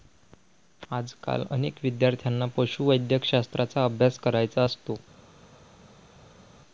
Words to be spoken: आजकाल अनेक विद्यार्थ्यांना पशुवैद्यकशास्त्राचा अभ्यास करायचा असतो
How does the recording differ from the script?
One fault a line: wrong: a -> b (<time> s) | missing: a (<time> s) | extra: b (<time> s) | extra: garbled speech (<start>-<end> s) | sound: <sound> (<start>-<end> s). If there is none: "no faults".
no faults